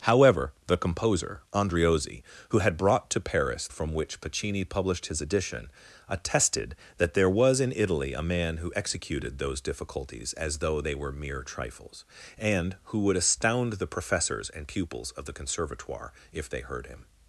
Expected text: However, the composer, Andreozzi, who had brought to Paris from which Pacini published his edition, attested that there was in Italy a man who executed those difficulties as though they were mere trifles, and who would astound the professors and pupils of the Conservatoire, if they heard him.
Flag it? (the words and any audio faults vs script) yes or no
no